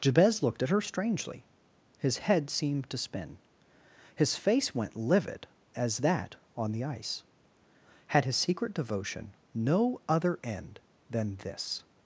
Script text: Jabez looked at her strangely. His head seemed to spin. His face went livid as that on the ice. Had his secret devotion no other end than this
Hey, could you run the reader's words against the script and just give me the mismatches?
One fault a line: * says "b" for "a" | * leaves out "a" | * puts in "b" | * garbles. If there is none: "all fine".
all fine